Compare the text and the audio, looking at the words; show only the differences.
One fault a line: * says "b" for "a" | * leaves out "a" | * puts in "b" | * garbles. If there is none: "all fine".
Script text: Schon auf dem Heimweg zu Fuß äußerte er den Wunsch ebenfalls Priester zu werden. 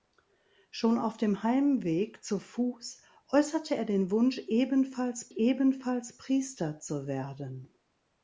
* puts in "ebenfalls"